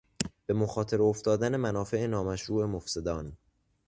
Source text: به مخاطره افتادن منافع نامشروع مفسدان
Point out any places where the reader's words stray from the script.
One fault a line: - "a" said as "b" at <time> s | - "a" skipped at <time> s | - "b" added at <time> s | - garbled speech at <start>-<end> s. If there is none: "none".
none